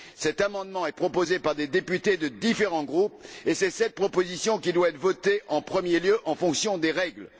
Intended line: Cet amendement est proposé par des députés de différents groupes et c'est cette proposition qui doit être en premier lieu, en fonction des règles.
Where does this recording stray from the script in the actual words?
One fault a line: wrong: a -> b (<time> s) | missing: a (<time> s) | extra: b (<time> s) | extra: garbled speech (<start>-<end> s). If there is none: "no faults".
extra: votée (5.0 s)